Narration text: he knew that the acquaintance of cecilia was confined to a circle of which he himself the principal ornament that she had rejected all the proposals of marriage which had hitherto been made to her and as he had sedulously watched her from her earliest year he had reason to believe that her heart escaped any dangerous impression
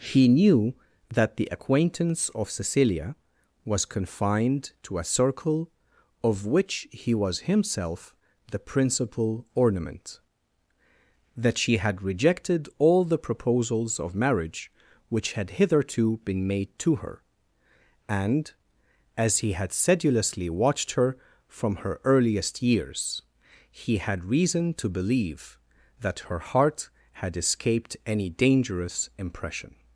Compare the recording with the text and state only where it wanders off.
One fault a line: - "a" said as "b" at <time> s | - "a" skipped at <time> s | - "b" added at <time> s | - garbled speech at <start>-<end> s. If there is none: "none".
- "was" added at 7.1 s
- "year" said as "years" at 22.6 s
- "had" added at 27.2 s